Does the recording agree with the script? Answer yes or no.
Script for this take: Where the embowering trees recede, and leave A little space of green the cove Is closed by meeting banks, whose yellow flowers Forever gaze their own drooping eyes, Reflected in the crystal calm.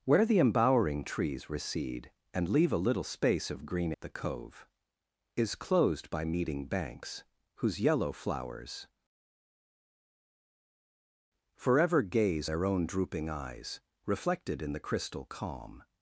yes